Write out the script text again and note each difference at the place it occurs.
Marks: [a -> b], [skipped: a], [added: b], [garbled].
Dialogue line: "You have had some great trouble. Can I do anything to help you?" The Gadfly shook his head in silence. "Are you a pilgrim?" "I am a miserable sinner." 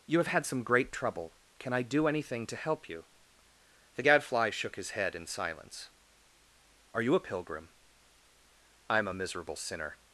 "You have had some great trouble. Can I do anything to help you?" The Gadfly shook his head in silence. "Are you a pilgrim?" "I am a miserable sinner."